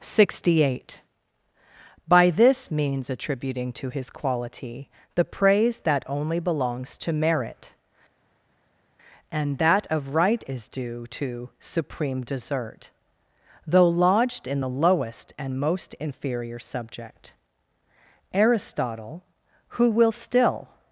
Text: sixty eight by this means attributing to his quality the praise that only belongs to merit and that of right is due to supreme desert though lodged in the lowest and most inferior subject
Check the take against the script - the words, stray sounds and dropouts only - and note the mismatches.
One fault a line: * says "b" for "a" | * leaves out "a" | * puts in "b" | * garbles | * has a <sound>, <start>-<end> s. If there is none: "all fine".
* puts in "aristotle who will still"